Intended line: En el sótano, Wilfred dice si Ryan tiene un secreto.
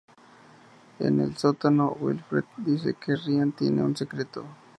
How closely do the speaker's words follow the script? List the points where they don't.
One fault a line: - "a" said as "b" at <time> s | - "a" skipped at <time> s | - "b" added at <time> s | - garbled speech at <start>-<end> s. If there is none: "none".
- "si" said as "que" at 3.0 s